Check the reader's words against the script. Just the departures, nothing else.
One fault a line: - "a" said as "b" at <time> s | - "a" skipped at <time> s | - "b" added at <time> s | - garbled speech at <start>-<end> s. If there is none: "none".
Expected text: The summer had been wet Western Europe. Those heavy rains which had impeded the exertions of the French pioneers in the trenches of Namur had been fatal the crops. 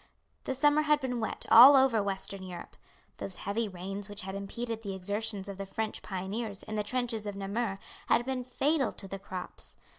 - "all over" added at 1.5 s
- "to" added at 8.9 s